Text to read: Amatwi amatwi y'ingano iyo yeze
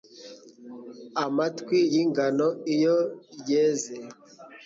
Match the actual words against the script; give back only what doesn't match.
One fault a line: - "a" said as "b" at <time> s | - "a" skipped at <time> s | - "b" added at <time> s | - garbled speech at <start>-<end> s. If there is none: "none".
- "amatwi" skipped at 1.8 s